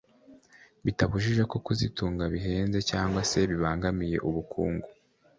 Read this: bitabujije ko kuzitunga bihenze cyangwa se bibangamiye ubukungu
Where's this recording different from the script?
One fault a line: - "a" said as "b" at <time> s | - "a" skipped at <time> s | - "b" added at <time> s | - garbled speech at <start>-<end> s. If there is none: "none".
none